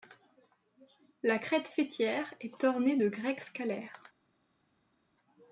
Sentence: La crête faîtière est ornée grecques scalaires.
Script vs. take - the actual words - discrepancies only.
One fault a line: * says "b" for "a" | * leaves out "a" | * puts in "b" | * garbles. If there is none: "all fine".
* puts in "de"